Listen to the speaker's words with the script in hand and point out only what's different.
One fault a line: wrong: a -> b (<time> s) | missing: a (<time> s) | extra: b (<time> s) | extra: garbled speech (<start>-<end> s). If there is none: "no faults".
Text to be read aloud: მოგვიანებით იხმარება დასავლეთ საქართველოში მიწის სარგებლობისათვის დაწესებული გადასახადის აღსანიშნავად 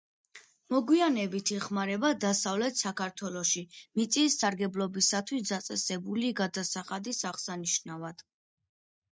no faults